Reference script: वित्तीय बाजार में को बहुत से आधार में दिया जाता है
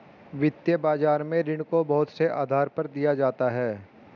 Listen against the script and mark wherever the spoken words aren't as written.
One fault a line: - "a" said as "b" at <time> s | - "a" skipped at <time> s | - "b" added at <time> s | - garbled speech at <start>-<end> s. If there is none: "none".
- "ऋण" added at 1.4 s
- "में" said as "पर" at 2.7 s